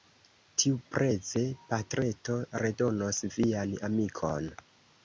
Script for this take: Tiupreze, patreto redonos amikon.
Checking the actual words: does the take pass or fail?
fail